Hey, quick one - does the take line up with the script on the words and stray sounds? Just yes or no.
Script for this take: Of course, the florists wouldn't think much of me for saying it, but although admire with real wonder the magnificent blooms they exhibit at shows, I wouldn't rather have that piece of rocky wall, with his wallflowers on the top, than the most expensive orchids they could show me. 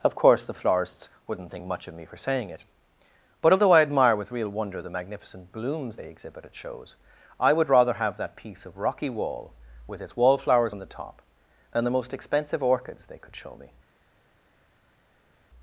no